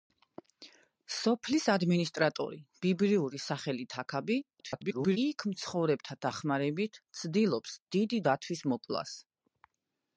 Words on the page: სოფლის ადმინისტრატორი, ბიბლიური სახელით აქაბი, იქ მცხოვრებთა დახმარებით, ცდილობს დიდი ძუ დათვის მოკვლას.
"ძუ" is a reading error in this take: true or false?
true